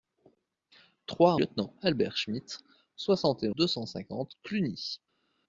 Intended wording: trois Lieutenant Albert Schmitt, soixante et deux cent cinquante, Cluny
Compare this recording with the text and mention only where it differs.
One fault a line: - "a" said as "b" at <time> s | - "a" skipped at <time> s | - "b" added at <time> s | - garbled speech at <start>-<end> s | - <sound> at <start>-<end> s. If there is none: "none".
none